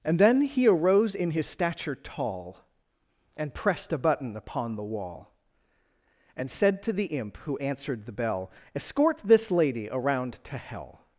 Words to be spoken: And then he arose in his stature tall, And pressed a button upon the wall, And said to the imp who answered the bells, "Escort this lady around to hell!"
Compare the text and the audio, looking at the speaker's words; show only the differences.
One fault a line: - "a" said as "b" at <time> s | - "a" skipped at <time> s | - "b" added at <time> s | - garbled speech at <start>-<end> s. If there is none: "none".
- "bells" said as "bell" at 8.1 s